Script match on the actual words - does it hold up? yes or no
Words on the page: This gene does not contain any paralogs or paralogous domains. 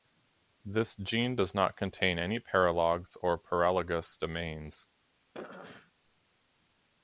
yes